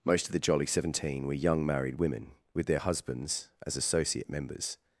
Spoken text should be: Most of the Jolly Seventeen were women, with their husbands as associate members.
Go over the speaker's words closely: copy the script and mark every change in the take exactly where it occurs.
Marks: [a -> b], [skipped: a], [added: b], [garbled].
Most of the Jolly Seventeen were [added: young married] women, with their husbands as associate members.